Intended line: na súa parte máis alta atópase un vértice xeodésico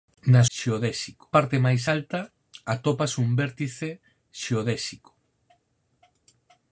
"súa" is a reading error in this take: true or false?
true